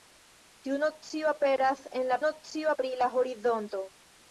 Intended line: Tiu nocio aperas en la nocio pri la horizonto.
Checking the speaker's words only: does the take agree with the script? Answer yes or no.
yes